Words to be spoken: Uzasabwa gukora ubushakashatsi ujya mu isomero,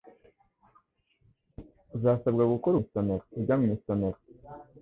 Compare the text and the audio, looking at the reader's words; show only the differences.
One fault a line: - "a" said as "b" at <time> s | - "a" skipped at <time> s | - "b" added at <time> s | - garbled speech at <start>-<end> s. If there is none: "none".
- "ubushakashatsi" said as "isomero" at 2.8 s